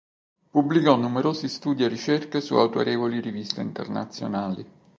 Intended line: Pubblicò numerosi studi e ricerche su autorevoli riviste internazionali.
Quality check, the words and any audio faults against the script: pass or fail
pass